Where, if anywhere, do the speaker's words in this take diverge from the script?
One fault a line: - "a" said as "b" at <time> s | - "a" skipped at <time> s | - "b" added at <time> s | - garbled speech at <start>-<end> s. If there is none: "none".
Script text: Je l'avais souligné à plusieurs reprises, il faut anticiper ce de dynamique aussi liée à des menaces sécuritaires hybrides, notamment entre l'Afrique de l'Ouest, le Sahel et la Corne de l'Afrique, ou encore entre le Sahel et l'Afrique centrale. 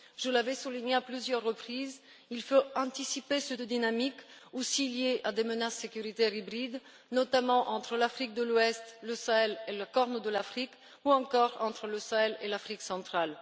none